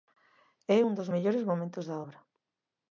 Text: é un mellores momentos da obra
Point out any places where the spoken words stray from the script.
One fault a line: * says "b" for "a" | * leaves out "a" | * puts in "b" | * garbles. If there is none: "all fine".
* puts in "dos"